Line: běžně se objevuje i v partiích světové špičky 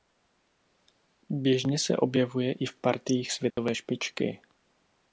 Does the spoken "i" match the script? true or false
true